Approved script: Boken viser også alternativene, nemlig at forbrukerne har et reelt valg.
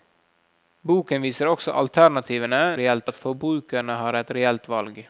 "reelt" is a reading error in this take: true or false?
false